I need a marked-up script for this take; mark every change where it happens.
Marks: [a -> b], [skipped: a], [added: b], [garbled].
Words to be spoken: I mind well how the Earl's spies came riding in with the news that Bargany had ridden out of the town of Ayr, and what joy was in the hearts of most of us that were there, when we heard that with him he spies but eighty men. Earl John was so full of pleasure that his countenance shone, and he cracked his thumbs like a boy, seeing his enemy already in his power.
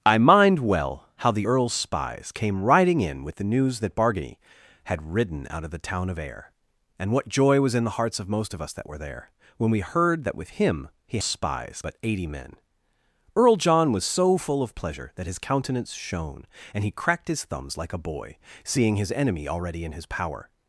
I mind well how the Earl's spies came riding in with the news that Bargany had ridden out of the town of Ayr, and what joy was in the hearts of most of us that were there, when we heard that with him he spies but eighty men. Earl John was so full of pleasure that his countenance shone, and he cracked his thumbs like a boy, seeing his enemy already in his power.